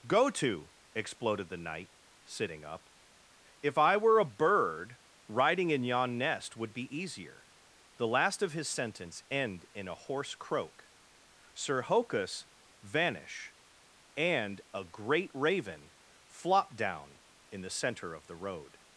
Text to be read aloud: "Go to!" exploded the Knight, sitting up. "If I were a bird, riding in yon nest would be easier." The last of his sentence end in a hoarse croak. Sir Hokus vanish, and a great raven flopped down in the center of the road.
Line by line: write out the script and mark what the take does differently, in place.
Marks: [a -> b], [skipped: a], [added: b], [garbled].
"Go to!" exploded the Knight, sitting up. "If I were a bird, riding in yon nest would be easier." The last of his sentence end in a hoarse croak. Sir Hokus vanish, and a great raven flopped down in the center of the road.